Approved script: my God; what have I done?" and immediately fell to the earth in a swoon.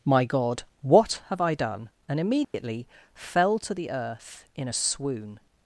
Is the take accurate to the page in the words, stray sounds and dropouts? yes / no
no